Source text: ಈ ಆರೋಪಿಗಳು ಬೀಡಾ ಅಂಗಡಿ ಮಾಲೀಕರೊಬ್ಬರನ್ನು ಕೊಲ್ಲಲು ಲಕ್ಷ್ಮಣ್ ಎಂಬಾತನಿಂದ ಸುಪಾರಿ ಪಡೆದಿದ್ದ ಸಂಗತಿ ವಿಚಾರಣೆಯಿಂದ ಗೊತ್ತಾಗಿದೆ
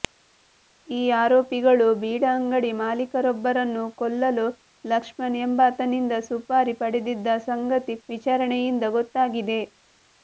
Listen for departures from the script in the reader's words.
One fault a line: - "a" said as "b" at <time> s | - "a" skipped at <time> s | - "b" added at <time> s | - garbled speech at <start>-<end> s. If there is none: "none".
none